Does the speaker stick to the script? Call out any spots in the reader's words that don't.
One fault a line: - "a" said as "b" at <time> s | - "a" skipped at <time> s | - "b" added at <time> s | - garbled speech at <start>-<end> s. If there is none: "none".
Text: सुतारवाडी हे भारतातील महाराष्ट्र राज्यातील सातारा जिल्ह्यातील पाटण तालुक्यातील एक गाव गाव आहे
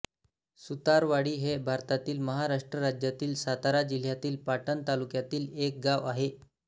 - "गाव" skipped at 6.1 s